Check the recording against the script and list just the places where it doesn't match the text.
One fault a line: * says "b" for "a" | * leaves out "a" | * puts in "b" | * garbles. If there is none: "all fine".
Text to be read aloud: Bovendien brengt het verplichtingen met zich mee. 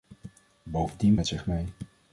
* leaves out "brengt het verplichtingen"